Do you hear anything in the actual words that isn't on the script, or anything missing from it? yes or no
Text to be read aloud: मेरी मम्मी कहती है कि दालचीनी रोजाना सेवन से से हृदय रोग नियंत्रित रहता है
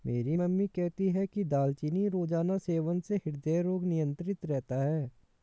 yes